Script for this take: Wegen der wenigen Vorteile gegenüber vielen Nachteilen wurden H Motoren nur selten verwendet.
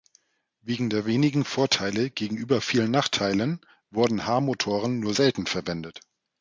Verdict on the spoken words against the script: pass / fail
pass